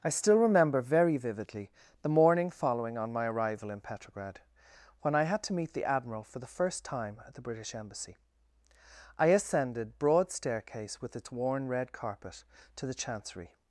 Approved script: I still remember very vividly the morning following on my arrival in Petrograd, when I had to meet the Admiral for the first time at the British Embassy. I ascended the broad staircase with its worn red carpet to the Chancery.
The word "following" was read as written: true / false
true